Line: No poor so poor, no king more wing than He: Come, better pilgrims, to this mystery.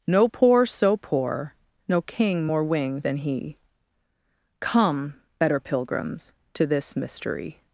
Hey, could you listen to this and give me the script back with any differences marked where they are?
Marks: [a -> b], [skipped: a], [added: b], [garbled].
No poor so poor, no king more wing than He: Come, better pilgrims, to this mystery.